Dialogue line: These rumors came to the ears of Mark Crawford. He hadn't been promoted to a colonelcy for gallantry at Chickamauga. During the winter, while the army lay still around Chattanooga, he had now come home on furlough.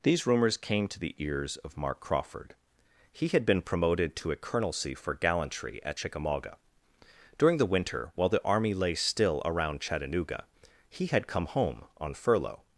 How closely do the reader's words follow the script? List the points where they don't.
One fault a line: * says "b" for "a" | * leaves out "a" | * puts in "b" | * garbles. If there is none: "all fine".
* says "had" for "hadn't"
* leaves out "now"